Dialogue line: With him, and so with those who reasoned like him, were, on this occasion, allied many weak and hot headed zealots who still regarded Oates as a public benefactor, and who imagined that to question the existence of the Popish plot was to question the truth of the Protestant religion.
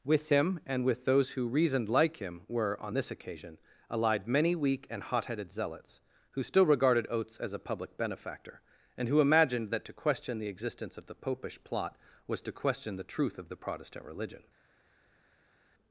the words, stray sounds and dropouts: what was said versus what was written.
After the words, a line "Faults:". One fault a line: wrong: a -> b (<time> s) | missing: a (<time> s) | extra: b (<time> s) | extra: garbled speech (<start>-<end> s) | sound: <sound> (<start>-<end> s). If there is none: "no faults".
With him, and with those who reasoned like him, were, on this occasion, allied many weak and hot headed zealots who still regarded Oates as a public benefactor, and who imagined that to question the existence of the Popish plot was to question the truth of the Protestant religion.
Faults:
missing: so (0.8 s)